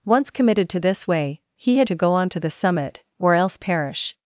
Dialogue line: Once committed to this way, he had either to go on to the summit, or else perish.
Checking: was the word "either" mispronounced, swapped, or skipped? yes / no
yes